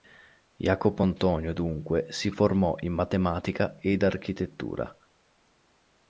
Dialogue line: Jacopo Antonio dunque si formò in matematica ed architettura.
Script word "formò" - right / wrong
right